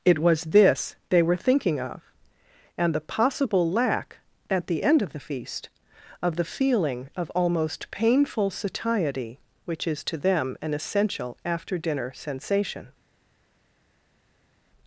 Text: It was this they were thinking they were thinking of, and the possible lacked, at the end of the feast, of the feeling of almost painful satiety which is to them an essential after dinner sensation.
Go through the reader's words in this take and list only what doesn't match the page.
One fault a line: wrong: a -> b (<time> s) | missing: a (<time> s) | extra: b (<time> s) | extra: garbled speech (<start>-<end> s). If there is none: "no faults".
missing: they were thinking (1.8 s)
wrong: lacked -> lack (3.7 s)